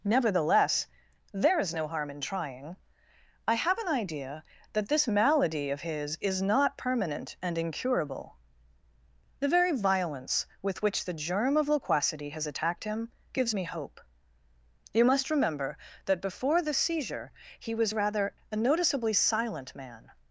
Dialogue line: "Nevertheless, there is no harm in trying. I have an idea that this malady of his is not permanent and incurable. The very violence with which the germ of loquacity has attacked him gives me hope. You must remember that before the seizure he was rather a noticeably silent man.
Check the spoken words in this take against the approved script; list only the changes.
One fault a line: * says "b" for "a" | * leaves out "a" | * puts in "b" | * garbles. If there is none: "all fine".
all fine